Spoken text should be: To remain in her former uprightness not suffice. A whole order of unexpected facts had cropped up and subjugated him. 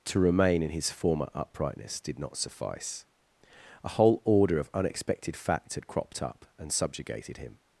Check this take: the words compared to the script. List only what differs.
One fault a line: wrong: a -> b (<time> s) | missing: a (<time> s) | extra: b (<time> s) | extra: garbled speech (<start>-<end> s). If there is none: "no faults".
wrong: her -> his (0.7 s)
extra: did (2.0 s)